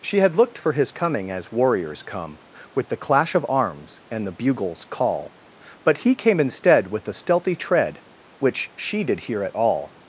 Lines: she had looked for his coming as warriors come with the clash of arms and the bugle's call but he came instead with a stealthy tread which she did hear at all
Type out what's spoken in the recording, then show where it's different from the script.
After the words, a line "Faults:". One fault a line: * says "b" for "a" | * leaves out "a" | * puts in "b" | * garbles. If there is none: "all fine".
she had looked for his coming as warriors come with the clash of arms and the bugle's call but he came instead with a stealthy tread which she did hear at all
Faults:
all fine